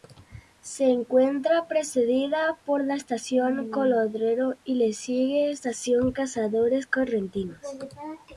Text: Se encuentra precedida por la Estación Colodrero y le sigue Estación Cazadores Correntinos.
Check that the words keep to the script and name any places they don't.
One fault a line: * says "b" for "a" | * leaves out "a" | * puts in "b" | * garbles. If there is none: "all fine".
all fine